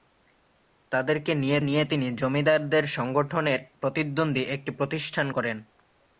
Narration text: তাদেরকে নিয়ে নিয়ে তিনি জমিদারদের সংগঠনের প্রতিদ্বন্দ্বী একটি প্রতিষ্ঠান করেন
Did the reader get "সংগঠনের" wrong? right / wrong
right